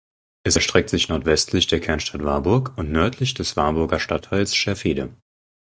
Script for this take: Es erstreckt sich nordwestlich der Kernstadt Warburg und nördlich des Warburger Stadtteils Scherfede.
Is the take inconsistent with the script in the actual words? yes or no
no